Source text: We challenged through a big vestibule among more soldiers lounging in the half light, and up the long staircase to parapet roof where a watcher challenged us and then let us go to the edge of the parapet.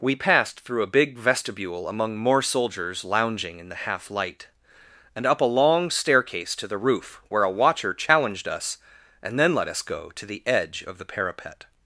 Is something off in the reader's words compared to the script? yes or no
yes